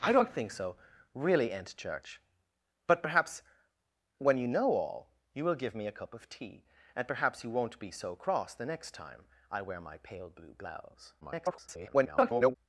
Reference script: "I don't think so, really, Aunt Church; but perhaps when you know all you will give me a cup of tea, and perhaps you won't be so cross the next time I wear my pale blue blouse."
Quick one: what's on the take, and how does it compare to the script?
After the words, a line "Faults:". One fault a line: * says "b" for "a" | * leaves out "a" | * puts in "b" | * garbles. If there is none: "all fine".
"I don't think so, really, Aunt Church; but perhaps when you know all you will give me a cup of tea, and perhaps you won't be so cross the next time I wear my pale blue blouse." [garbled]
Faults:
* garbles